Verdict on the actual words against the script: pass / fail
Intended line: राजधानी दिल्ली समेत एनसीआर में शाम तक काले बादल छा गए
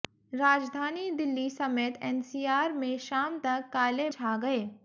fail